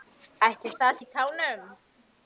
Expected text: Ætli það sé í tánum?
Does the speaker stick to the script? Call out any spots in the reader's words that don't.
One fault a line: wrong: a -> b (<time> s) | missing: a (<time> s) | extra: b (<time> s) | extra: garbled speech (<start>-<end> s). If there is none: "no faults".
missing: sé (0.9 s)